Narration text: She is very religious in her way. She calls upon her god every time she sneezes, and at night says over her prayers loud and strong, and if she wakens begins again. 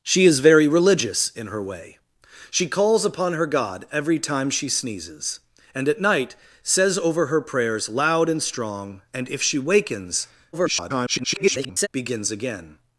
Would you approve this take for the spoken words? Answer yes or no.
no